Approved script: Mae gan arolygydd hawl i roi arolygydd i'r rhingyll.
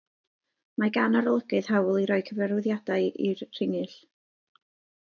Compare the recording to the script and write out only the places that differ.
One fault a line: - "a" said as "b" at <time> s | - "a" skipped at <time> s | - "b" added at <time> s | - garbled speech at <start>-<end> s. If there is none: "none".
- "arolygydd" said as "cyfarwyddiadau" at 2.3 s